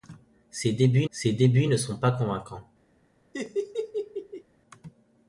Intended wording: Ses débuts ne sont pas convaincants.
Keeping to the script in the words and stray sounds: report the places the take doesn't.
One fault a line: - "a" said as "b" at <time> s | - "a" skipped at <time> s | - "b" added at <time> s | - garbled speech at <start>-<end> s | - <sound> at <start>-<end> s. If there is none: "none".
- "ses débuts" added at 1.1 s
- laugh at 3.3-4.4 s